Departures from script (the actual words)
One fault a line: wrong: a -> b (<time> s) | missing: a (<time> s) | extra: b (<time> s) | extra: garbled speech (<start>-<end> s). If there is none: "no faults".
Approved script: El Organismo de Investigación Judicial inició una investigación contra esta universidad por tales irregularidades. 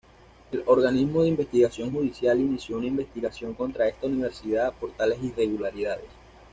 no faults